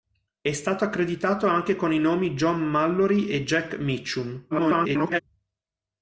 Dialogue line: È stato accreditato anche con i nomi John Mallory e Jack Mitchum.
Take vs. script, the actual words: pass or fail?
fail